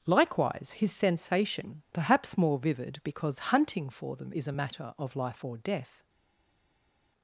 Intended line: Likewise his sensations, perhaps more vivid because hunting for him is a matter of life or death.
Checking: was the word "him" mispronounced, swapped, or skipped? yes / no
yes